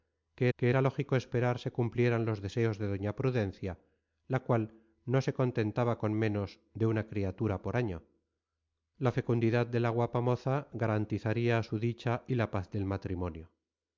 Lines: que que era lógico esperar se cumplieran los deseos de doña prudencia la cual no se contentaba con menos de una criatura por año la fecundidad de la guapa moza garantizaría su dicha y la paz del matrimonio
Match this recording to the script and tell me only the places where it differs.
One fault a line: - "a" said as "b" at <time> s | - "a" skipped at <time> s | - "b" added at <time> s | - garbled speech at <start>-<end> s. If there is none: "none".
none